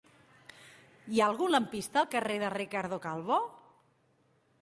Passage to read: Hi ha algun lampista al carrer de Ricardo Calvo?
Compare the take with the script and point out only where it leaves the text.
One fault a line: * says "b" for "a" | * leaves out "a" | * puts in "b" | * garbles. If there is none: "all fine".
all fine